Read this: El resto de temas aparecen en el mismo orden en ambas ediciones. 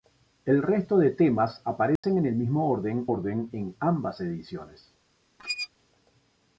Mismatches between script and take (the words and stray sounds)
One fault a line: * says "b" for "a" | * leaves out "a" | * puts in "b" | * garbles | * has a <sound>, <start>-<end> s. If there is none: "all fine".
* has a dropout, 2.0-2.0 s
* puts in "orden"
* has a squeak, 5.4-5.7 s